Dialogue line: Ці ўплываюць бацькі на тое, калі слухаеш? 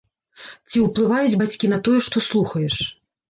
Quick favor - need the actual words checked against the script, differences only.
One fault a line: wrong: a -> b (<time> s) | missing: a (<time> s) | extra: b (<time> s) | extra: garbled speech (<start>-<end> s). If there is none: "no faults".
wrong: калі -> што (2.1 s)